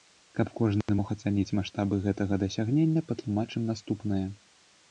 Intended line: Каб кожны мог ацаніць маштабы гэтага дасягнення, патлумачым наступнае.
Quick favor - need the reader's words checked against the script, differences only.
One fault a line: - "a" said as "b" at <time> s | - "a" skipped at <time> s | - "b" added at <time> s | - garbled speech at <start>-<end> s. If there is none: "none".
none